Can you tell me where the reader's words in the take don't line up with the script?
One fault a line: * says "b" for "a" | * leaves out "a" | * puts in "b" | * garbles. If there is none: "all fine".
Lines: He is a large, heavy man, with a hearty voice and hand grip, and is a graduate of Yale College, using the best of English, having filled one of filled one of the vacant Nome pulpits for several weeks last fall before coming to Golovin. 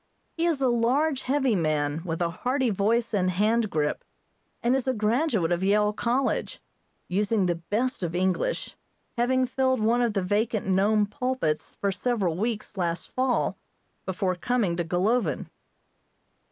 * leaves out "filled one of"